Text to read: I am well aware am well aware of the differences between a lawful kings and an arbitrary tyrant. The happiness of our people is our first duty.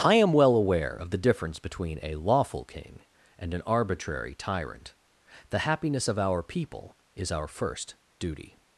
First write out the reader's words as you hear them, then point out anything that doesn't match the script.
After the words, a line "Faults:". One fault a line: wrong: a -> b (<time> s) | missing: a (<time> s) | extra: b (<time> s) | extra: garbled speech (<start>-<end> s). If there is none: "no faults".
I am well aware of the difference between a lawful king and an arbitrary tyrant. The happiness of our people is our first duty.
Faults:
missing: am well aware (0.9 s)
wrong: differences -> difference (1.2 s)
wrong: kings -> king (2.6 s)